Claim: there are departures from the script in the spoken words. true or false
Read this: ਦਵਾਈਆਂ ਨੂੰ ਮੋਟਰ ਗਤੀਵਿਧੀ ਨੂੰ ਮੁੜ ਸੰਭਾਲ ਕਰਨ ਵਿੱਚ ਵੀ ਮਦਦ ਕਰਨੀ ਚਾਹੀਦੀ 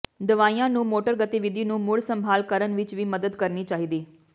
false